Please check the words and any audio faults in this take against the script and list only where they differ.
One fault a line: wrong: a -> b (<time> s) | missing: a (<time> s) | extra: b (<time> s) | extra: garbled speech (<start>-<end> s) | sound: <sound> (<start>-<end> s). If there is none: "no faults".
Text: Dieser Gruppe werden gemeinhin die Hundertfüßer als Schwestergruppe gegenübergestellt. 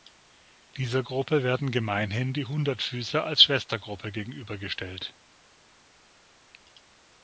no faults